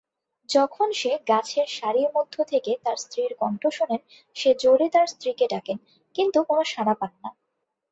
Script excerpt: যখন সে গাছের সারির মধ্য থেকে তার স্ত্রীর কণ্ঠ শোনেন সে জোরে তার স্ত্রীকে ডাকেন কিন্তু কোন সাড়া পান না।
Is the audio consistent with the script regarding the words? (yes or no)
yes